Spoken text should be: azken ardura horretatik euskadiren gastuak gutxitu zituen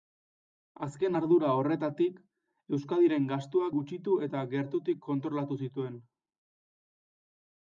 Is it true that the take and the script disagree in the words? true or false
true